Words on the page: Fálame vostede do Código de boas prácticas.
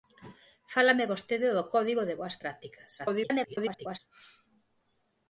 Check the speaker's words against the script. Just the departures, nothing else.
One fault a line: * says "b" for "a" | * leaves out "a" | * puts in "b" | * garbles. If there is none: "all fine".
* garbles